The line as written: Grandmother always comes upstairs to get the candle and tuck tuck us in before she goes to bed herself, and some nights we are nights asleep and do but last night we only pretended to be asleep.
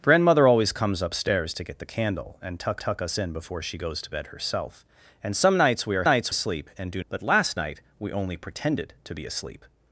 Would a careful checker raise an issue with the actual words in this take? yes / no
no